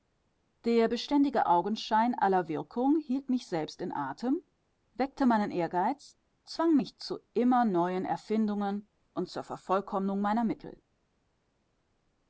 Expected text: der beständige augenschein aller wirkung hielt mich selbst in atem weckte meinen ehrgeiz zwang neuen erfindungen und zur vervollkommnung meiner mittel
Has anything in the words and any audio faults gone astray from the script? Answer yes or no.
yes